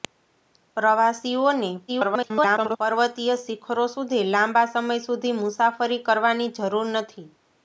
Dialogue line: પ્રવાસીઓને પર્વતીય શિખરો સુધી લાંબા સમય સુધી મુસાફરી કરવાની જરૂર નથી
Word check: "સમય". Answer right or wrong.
right